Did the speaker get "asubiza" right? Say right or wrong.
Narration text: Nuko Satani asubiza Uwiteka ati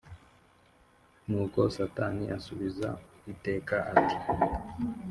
right